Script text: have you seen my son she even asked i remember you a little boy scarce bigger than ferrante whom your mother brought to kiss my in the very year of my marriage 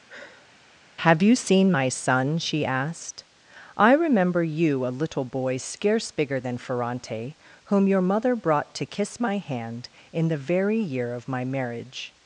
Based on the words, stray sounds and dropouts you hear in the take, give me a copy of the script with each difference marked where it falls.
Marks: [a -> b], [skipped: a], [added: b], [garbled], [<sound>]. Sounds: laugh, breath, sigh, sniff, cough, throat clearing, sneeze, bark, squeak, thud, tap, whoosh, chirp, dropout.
[sigh] have you seen my son she [skipped: even] asked i remember you a little boy scarce bigger than ferrante whom your mother brought to kiss my [added: hand] in the very year of my marriage